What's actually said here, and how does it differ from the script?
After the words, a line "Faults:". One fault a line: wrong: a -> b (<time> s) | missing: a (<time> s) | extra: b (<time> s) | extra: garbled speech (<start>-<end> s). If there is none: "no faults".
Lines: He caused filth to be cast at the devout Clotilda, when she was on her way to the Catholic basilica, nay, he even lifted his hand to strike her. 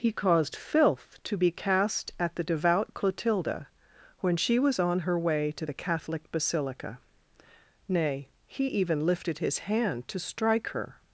He caused filth to be cast at the devout Clotilda, when she was on her way to the Catholic basilica, nay, he even lifted his hand to strike her.
Faults:
no faults